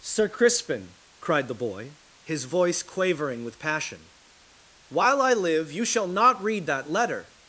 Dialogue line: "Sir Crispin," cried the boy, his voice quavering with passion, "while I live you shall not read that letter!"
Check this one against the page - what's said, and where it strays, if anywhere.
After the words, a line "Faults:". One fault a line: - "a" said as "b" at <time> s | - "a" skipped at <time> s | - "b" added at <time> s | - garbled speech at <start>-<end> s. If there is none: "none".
"Sir Crispin," cried the boy, his voice quavering with passion, "while I live you shall not read that letter!"
Faults:
none